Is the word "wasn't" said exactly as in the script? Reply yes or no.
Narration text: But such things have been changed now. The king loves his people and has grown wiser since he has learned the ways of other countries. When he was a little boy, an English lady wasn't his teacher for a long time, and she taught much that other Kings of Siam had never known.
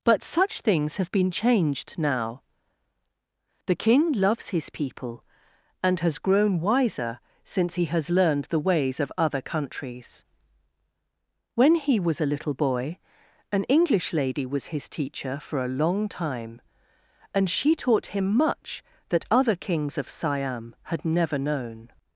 no